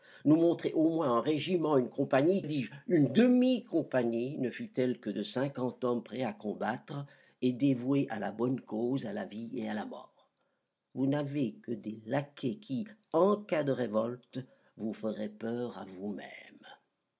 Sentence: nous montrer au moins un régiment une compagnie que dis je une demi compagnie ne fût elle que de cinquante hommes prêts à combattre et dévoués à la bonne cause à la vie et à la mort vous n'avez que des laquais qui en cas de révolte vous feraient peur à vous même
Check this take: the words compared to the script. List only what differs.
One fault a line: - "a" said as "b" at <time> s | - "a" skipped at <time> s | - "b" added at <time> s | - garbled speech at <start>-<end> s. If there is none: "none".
- "que" skipped at 2.4 s